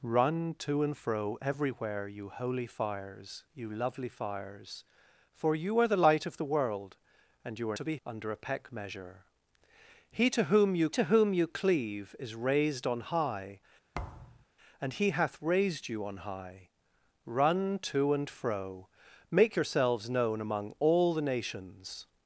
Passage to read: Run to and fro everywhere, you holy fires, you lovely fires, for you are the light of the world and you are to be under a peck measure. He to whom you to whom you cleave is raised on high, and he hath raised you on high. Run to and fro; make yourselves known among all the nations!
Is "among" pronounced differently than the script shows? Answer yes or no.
no